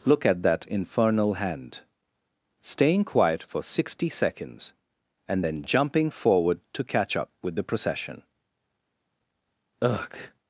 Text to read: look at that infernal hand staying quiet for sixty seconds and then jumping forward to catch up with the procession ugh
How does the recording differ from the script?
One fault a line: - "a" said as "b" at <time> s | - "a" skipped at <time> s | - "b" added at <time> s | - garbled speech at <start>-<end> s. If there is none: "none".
none